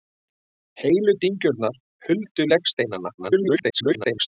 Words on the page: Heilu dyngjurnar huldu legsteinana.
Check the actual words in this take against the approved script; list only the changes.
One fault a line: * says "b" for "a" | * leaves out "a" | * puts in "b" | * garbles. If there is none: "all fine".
* garbles